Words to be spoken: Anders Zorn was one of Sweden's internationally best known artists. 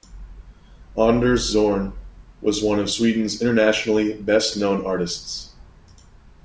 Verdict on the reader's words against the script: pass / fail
pass